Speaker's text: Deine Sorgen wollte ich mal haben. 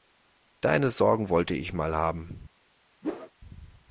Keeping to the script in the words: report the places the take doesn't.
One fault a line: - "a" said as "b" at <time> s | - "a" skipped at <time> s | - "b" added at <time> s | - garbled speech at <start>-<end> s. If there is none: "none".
none